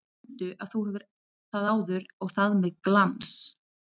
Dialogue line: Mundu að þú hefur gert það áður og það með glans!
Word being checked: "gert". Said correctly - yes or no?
no